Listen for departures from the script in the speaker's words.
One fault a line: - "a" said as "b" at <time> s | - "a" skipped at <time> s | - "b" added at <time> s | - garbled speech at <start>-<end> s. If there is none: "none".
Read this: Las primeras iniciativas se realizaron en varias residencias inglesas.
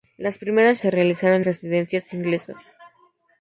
- "iniciativas" skipped at 0.8 s
- "en varias" skipped at 1.5 s